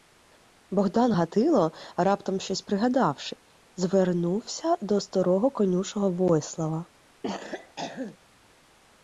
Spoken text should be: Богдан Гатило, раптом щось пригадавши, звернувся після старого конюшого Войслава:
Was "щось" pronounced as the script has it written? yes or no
yes